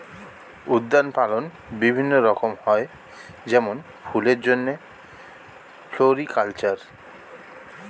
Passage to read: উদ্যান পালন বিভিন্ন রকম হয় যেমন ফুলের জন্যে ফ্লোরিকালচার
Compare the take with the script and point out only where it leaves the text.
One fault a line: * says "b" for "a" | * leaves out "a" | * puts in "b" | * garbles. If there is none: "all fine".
all fine